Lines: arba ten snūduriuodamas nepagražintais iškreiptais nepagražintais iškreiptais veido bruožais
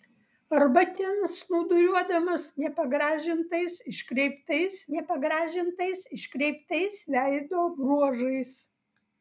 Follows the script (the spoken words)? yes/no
yes